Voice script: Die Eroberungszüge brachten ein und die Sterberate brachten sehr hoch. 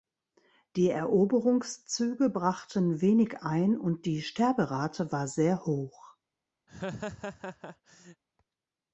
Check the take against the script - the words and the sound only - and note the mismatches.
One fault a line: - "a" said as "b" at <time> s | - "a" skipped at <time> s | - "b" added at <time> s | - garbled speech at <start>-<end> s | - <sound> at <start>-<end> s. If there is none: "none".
- "wenig" added at 3.0 s
- "brachten" said as "war" at 5.1 s
- laugh at 6.7-8.2 s